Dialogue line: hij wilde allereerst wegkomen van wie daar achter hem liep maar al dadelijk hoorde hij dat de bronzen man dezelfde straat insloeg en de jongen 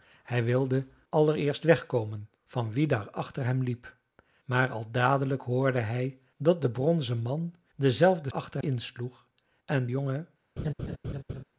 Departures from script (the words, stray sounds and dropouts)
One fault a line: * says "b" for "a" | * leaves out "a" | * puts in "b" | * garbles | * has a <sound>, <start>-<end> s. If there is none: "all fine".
* says "achter" for "straat"
* leaves out "de"
* has a laugh, 10.6-11.4 s